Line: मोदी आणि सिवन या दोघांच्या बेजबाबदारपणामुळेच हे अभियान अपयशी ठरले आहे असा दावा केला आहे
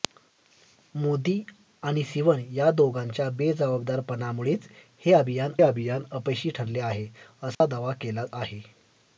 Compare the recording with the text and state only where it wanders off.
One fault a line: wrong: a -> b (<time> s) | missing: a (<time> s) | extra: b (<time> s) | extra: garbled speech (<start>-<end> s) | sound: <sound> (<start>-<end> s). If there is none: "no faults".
extra: अभियान (5.6 s)
sound: dropout (7.5-7.6 s)